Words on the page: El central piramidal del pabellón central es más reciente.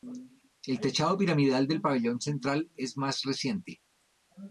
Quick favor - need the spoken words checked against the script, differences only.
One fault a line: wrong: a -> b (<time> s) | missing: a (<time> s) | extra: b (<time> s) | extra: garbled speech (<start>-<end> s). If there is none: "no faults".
wrong: central -> techado (0.8 s)